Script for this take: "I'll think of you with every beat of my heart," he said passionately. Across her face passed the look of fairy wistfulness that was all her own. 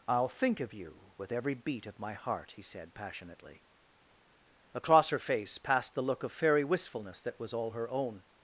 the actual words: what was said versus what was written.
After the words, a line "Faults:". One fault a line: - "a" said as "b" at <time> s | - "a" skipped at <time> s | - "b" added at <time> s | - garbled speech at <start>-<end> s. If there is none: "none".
"I'll think of you with every beat of my heart," he said passionately. Across her face passed the look of fairy wistfulness that was all her own.
Faults:
none